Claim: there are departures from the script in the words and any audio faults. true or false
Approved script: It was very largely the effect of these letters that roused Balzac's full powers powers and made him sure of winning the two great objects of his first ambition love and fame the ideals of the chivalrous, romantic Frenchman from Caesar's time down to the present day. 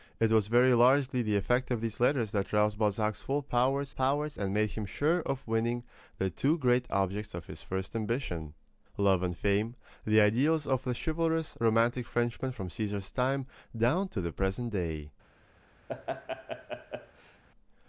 true